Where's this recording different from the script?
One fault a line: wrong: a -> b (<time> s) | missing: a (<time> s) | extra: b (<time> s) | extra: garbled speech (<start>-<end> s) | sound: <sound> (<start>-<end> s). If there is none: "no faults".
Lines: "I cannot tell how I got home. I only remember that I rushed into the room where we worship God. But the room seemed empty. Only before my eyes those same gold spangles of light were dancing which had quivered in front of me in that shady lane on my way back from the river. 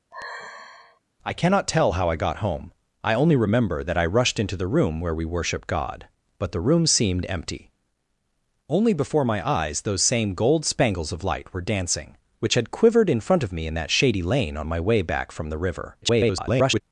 sound: sigh (0.1-1.0 s)
extra: garbled speech (16.0-16.8 s)